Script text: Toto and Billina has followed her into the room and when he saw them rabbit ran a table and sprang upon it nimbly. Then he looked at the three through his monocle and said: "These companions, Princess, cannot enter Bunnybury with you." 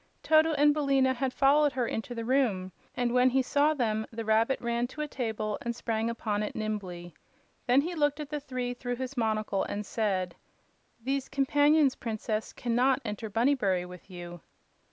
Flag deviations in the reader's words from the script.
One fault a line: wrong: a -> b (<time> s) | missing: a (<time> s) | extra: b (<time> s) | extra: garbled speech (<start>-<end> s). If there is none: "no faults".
wrong: has -> had (1.1 s)
extra: the (4.1 s)
extra: to (4.9 s)